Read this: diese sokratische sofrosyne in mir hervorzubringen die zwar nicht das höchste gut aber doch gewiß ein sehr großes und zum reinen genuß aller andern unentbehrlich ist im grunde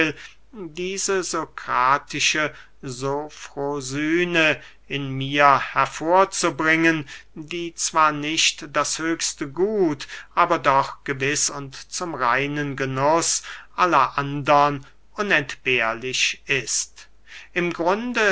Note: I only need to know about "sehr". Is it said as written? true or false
false